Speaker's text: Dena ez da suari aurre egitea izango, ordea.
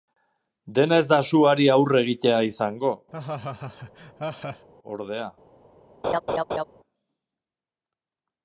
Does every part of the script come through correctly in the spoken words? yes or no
yes